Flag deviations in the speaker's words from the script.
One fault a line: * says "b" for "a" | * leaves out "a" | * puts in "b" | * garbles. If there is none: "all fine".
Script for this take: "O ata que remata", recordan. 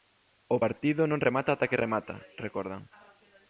* puts in "partido non remata"